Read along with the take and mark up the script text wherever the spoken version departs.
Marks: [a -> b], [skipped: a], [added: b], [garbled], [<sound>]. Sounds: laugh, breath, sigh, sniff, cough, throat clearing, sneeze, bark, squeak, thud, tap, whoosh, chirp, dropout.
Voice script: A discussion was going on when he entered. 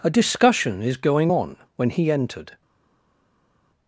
A discussion [was -> is] going on when he entered.